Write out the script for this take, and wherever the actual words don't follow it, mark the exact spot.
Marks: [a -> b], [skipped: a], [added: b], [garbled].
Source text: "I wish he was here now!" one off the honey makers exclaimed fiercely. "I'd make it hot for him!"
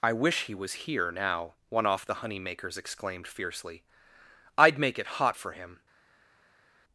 "I wish he was here now!" one off the honey makers exclaimed fiercely. "I'd make it hot for him!"